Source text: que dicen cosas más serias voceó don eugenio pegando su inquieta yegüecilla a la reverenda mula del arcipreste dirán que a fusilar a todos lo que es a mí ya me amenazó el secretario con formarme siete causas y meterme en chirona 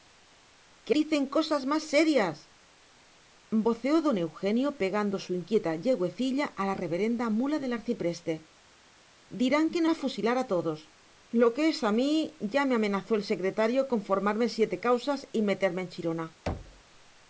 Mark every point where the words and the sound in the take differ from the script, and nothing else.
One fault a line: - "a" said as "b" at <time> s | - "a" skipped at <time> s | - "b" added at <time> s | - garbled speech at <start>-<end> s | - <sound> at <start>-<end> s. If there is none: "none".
- thud at 16.5-16.8 s